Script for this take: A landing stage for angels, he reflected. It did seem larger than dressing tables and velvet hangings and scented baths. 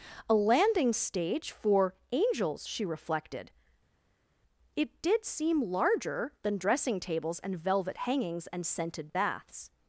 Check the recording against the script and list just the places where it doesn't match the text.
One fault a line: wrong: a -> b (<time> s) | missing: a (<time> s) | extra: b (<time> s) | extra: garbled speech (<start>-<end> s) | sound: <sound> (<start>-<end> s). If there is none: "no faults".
wrong: he -> she (2.7 s)